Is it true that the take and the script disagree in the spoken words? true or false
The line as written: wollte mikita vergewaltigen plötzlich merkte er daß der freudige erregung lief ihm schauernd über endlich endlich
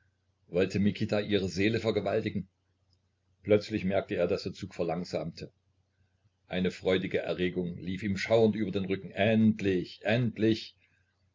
true